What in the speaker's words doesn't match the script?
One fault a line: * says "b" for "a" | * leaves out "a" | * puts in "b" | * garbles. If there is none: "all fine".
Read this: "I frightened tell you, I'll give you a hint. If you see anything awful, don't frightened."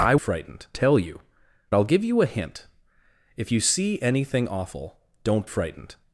all fine